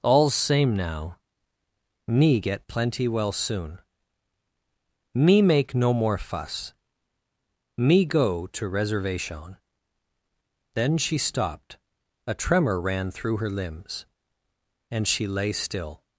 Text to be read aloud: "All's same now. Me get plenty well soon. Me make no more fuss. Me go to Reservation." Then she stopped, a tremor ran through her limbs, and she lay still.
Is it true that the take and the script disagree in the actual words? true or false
false